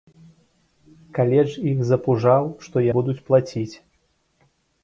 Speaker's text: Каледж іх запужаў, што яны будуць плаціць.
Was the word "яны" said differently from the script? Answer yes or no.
yes